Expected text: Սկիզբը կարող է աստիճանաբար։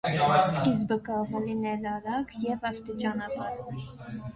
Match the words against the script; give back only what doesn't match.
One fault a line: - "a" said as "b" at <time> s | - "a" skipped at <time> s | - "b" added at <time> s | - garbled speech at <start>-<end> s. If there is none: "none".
- "լինել արագ և" added at 1.4 s